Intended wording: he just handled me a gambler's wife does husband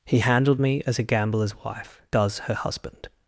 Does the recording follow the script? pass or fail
fail